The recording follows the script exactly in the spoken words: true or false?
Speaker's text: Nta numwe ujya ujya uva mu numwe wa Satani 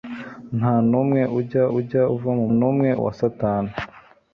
true